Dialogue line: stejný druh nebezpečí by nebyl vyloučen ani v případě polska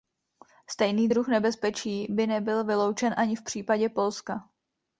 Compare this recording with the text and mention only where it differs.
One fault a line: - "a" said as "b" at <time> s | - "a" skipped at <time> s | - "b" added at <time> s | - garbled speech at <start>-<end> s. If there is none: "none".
none